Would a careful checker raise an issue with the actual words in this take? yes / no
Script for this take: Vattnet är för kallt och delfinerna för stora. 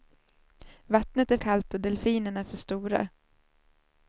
yes